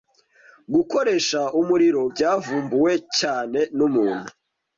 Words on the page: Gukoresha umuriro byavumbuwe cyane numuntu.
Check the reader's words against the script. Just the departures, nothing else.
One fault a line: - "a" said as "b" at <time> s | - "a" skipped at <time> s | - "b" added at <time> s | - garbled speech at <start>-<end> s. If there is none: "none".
none